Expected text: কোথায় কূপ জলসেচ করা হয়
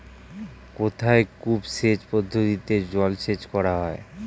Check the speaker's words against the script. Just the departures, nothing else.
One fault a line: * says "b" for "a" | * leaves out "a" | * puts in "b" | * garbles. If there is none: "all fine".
* puts in "সেচ পদ্ধতিতে"